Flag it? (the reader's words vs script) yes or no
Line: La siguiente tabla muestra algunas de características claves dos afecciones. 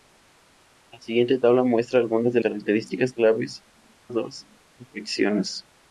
no